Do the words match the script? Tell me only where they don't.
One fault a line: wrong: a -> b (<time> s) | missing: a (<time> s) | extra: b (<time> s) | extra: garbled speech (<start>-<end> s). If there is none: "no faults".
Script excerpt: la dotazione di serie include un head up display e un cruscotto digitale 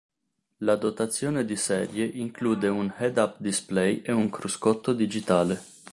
no faults